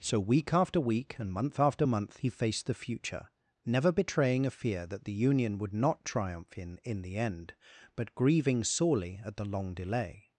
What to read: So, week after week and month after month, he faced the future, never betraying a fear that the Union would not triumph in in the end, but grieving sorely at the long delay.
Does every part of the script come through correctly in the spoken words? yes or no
yes